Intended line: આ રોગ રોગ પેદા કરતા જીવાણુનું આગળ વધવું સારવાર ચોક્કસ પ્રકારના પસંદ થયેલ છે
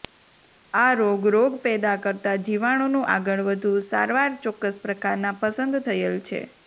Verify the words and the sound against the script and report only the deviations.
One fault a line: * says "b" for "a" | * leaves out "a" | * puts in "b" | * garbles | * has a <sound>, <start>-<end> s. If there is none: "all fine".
all fine